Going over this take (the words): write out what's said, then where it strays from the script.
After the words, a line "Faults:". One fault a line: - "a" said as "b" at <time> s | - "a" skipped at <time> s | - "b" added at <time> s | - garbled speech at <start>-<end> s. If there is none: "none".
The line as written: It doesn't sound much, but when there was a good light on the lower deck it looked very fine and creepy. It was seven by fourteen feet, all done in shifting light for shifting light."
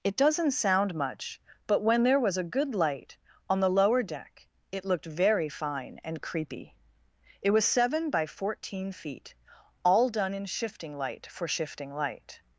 It doesn't sound much, but when there was a good light on the lower deck it looked very fine and creepy. It was seven by fourteen feet, all done in shifting light for shifting light."
Faults:
none